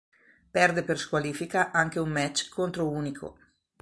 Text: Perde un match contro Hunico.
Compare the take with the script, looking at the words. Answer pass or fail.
fail